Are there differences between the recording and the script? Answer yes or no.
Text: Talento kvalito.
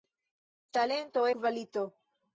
no